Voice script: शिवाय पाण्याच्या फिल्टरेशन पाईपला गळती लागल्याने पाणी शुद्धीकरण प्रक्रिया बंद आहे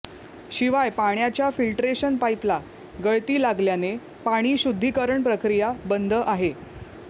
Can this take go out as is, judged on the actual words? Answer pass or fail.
pass